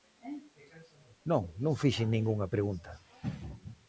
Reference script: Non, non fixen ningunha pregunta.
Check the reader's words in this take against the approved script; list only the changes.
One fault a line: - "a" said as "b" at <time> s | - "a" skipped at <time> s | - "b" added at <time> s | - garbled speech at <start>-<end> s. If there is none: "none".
none